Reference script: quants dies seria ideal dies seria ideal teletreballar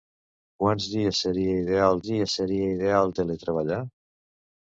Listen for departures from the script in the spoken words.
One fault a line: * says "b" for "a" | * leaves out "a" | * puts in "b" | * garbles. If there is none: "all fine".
all fine